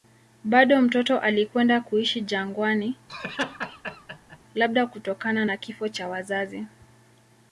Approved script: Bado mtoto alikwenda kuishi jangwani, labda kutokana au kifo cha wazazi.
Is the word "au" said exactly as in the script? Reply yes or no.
no